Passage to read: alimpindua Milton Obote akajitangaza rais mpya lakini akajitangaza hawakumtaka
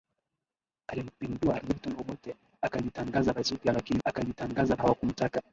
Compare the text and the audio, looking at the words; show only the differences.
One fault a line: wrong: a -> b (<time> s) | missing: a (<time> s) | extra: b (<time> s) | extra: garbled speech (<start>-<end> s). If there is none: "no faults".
no faults